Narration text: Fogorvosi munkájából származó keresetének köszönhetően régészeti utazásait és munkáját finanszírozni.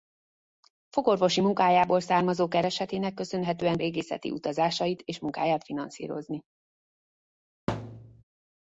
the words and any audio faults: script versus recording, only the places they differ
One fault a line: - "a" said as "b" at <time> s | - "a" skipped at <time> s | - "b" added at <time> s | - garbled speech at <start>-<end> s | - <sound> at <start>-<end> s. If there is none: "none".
- thud at 7.7-8.2 s